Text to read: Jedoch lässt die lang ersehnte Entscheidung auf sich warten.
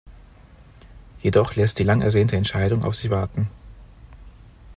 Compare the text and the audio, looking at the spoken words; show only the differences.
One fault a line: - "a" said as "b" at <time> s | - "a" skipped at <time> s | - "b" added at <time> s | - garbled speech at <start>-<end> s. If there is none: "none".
none